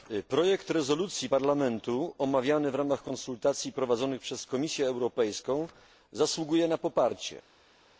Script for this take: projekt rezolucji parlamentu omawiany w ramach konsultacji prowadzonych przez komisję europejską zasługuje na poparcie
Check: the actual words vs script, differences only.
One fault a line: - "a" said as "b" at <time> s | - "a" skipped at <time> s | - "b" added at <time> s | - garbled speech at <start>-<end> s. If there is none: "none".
none